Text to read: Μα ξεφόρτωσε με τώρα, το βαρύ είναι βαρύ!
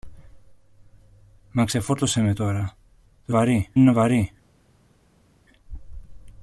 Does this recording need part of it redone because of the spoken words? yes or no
no